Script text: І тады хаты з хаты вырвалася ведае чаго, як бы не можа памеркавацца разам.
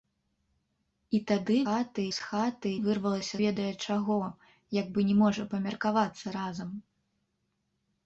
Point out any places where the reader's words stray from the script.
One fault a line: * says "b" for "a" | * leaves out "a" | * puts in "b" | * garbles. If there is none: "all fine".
all fine